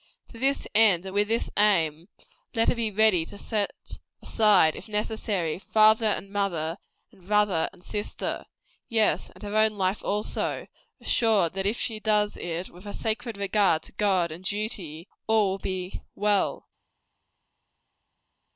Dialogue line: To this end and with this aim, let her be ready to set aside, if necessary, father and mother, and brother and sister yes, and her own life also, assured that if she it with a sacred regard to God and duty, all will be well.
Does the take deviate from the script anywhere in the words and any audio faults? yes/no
yes